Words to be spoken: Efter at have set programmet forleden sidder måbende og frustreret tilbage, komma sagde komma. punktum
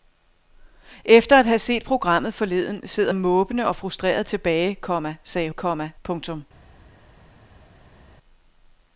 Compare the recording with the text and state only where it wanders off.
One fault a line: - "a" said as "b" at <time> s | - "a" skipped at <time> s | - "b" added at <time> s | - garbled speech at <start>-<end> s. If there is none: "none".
none